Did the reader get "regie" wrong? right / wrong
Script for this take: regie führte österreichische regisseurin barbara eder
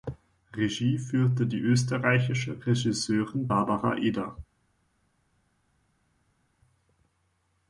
right